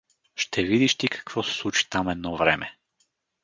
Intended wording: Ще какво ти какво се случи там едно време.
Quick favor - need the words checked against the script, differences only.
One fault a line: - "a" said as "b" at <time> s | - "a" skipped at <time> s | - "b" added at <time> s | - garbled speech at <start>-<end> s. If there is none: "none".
- "какво" said as "видиш" at 0.6 s